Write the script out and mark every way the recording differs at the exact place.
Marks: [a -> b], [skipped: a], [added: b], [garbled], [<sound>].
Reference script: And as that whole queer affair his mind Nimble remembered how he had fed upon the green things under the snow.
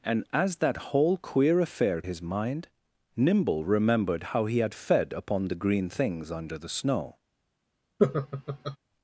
And as that whole queer affair his mind Nimble remembered how he had fed upon the green things under the snow. [laugh]